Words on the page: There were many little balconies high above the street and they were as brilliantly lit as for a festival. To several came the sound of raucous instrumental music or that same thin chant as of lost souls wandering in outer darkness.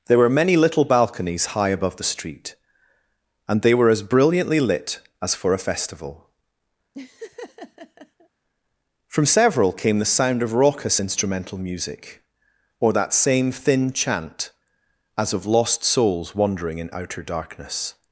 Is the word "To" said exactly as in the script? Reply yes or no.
no